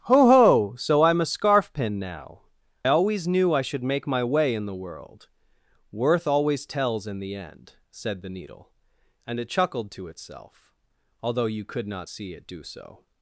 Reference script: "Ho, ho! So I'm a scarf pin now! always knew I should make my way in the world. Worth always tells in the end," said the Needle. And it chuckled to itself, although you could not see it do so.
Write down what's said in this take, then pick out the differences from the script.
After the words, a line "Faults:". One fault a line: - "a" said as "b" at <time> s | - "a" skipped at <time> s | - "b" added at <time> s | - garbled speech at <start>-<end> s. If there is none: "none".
"Ho, ho! So I'm a scarf pin now! always knew I should make my way in the world. Worth always tells in the end," said the Needle. And it chuckled to itself, although you could not see it do so.
Faults:
none